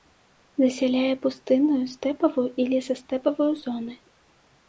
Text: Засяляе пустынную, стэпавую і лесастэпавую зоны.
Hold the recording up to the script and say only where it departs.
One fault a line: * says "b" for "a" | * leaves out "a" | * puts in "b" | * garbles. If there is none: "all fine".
all fine